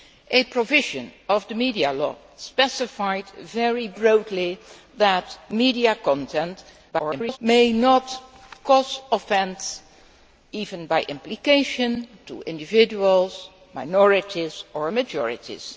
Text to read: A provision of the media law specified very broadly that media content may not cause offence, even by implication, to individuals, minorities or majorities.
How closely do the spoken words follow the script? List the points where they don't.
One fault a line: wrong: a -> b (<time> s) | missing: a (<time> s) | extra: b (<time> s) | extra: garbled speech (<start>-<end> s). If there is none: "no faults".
extra: garbled speech (6.9-7.4 s)